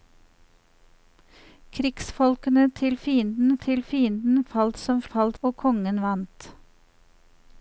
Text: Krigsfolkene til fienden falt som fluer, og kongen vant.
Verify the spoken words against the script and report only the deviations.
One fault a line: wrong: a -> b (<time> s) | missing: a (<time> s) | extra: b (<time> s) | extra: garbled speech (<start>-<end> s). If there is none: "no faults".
extra: til fienden (3.6 s)
wrong: fluer -> falt (5.1 s)